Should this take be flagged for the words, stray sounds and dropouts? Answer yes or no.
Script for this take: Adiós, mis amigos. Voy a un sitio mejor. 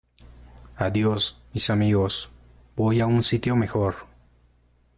no